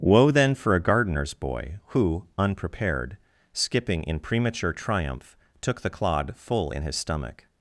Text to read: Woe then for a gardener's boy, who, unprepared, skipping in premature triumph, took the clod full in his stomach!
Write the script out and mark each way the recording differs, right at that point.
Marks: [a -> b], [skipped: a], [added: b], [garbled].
Woe then for a gardener's boy, who, unprepared, skipping in premature triumph, took the clod full in his stomach!